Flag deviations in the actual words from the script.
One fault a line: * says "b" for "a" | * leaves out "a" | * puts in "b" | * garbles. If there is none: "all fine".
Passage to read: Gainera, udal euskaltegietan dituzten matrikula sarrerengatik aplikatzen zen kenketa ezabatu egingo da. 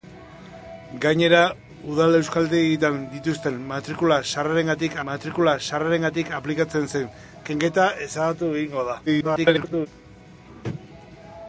* puts in "matrikula sarrerengatik"
* garbles